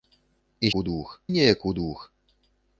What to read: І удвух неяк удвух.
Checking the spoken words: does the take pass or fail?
pass